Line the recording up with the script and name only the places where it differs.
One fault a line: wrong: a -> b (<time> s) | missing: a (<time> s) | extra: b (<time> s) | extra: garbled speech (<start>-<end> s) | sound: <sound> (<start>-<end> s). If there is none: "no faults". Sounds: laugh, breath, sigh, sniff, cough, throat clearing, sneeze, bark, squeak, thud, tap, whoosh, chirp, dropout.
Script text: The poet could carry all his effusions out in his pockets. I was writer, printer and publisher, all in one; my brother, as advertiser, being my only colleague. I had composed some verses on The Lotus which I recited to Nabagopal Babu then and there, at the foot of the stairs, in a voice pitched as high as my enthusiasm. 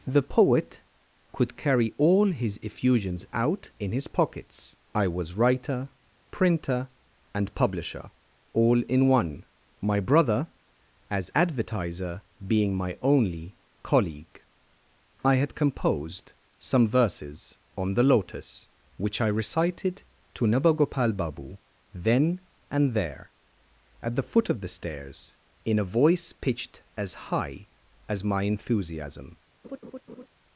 sound: laugh (29.6-30.3 s)